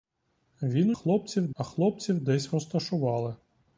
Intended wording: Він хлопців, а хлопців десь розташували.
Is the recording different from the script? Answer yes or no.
no